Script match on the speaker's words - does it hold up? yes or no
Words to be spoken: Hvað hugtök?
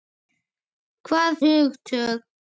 yes